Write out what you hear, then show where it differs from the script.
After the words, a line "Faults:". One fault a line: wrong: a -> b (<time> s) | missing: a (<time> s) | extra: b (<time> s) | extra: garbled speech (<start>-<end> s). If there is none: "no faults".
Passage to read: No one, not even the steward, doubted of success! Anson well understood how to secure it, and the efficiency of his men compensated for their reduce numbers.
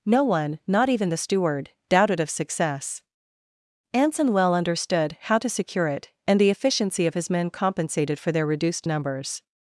No one, not even the steward, doubted of success! Anson well understood how to secure it, and the efficiency of his men compensated for their reduced numbers.
Faults:
wrong: reduce -> reduced (8.5 s)